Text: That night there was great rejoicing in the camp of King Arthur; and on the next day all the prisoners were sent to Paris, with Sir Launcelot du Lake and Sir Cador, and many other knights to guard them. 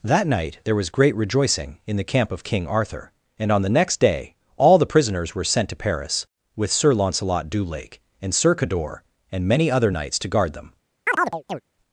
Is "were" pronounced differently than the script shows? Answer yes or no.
no